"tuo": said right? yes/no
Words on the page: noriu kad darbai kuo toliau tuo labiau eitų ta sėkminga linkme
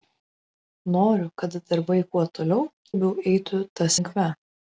no